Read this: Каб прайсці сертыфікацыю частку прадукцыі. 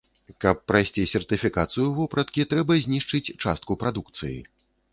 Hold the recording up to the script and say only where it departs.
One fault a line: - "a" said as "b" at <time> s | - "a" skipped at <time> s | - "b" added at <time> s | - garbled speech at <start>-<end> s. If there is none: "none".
- "вопраткі трэба знішчыць" added at 2.0 s